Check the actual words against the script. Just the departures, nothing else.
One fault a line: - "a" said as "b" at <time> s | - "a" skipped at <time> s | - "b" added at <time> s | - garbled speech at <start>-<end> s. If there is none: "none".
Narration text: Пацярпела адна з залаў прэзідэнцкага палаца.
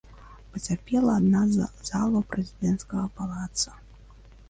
none